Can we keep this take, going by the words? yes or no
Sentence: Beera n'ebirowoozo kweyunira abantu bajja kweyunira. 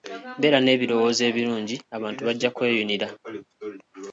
no